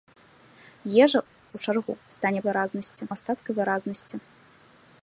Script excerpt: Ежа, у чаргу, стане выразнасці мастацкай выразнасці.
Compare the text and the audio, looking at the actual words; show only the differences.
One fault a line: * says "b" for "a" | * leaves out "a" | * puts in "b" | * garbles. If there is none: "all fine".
all fine